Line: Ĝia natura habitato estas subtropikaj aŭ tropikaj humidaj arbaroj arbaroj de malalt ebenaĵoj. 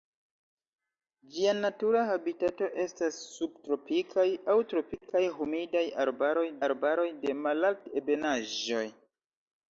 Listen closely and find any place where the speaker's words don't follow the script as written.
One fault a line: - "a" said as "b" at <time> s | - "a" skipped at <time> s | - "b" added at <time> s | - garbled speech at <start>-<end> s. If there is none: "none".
none